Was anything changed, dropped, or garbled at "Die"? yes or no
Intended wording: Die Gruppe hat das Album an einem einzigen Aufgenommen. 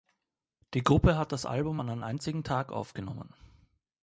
no